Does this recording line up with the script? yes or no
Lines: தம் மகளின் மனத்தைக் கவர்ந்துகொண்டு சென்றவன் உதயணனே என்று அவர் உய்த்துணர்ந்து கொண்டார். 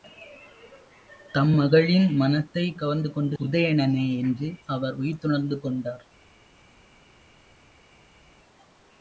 no